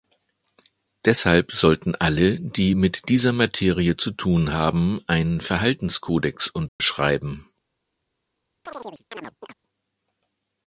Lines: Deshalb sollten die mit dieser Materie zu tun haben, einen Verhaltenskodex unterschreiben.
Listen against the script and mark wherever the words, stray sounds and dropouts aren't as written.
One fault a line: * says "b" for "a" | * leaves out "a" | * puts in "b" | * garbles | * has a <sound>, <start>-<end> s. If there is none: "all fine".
* puts in "alle"
* has a dropout, 6.7-6.8 s
* has a chirp, 8.7-9.5 s